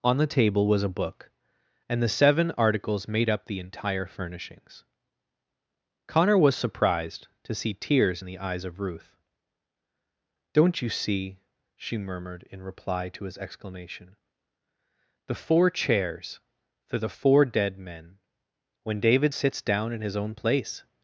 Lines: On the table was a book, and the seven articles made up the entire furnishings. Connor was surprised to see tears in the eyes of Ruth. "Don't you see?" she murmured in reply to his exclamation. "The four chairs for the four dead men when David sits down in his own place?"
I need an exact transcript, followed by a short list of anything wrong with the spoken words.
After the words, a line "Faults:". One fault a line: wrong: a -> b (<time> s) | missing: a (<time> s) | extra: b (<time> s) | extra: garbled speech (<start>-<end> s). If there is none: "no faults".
On the table was a book, and the seven articles made up the entire furnishings. Connor was surprised to see tears in the eyes of Ruth. "Don't you see?" she murmured in reply to his exclamation. "The four chairs for the four dead men when David sits down in his own place?"
Faults:
no faults